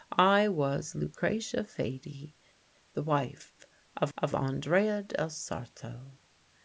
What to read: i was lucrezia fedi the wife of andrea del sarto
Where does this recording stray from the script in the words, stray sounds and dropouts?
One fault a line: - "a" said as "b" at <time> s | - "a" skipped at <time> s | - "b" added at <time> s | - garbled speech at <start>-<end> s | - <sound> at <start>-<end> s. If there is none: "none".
- "of" added at 4.1 s